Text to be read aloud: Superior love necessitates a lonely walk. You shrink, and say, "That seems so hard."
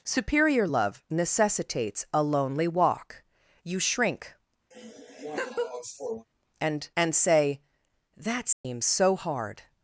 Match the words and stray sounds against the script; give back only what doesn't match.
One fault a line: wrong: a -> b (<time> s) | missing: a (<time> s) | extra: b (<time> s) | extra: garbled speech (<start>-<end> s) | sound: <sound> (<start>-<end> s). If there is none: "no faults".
sound: laugh (4.7-6.3 s)
extra: and (6.9 s)
sound: dropout (8.5-8.6 s)